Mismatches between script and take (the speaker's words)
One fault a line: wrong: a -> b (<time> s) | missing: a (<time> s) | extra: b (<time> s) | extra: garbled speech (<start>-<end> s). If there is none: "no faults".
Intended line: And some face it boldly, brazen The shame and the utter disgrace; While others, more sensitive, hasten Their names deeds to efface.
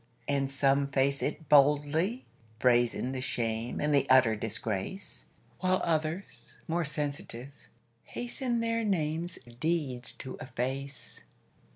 no faults